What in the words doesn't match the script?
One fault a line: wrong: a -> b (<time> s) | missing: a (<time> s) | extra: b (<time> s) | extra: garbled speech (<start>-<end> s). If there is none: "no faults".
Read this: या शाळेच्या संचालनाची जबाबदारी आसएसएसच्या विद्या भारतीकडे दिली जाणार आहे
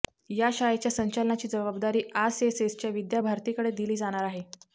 no faults